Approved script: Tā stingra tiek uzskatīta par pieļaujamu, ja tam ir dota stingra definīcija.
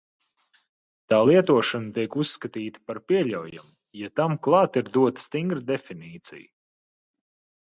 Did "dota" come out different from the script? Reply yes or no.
no